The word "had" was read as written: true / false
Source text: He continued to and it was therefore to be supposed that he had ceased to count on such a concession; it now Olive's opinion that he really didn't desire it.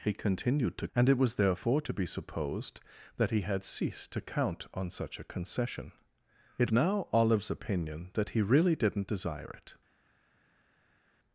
true